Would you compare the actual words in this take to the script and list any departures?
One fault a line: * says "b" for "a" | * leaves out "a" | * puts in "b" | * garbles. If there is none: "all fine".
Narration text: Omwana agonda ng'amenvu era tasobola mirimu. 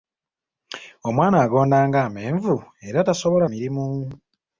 all fine